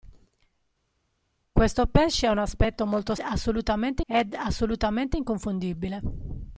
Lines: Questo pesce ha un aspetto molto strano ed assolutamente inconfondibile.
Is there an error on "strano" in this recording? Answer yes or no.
yes